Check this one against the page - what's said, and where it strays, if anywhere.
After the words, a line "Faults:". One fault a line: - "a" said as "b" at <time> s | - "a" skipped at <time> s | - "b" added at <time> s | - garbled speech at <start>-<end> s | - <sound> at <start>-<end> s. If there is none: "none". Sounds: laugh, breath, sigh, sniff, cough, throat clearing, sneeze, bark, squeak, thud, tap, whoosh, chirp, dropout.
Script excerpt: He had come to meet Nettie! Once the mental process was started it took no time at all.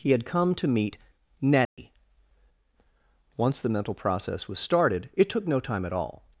He had come to meet Nettie! Once the mental process was started it took no time at all.
Faults:
- dropout at 1.6-1.8 s